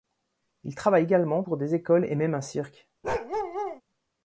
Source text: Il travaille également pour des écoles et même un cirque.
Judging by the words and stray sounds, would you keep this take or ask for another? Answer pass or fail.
fail